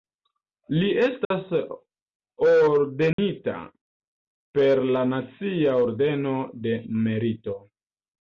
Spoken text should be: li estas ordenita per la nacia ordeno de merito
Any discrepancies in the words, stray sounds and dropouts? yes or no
yes